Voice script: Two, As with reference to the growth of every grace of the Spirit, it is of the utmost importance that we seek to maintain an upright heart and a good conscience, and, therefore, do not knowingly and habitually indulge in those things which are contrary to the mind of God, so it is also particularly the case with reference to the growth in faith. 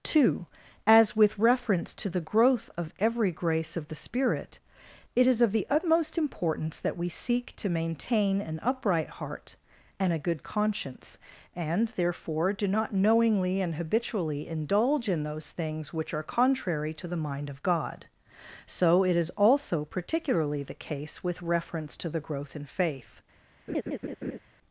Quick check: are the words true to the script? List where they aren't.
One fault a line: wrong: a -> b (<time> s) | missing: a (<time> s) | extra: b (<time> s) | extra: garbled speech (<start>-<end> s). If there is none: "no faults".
no faults